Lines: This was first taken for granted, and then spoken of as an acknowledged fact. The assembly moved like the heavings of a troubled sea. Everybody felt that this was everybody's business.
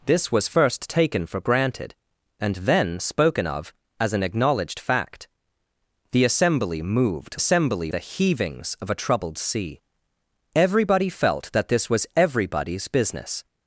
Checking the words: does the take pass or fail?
fail